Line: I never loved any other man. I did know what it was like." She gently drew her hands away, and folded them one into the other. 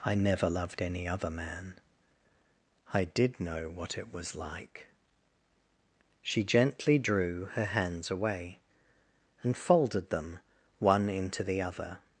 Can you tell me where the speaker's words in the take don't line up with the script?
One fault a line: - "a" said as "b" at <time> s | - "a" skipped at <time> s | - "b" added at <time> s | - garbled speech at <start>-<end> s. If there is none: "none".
none